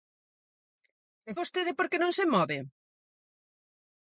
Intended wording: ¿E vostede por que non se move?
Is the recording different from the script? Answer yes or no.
no